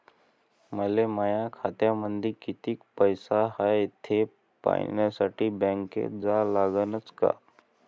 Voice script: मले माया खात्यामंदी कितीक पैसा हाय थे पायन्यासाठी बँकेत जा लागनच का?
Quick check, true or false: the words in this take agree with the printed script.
true